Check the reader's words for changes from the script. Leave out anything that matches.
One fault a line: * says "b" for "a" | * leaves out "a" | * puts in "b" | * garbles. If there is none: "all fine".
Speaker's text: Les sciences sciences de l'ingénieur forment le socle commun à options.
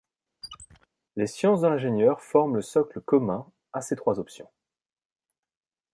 * leaves out "sciences"
* puts in "ces trois"